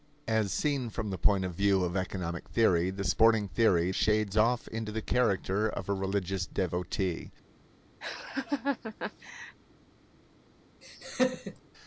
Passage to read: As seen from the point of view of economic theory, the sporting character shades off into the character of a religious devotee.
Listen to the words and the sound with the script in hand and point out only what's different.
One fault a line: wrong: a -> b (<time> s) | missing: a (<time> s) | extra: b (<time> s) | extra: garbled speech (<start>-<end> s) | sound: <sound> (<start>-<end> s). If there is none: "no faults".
wrong: character -> theory (3.5 s)
sound: laugh (8.0-9.6 s)
sound: laugh (10.8-11.6 s)